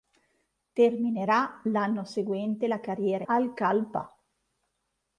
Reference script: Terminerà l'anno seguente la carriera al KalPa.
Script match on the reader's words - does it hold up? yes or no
yes